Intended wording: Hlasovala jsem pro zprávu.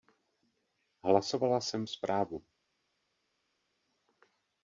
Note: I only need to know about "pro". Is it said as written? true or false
false